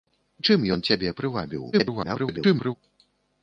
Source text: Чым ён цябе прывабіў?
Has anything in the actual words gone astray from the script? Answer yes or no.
yes